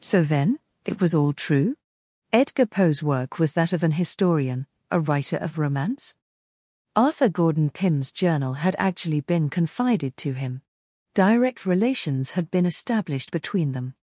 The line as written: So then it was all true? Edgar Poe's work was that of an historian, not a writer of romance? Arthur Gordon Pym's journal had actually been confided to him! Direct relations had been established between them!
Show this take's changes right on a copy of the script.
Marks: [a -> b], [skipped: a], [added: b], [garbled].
So then it was all true? Edgar Poe's work was that of an historian, [skipped: not] a writer of romance? Arthur Gordon Pym's journal had actually been confided to him! Direct relations had been established between them!